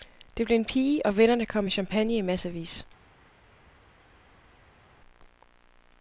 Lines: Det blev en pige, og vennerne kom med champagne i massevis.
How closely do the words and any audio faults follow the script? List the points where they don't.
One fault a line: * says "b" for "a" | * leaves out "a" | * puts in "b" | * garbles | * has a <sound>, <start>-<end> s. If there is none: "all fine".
all fine